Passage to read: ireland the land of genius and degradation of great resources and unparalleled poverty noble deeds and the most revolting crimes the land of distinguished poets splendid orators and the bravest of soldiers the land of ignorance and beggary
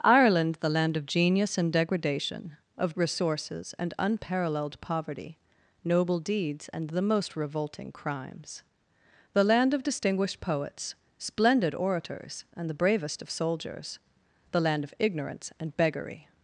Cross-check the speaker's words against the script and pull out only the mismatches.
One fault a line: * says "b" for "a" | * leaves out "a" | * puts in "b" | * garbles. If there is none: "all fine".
* leaves out "great"